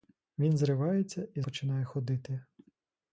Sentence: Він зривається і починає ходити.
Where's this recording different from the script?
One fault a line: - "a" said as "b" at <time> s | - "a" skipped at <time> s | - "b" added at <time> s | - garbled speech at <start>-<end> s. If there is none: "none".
none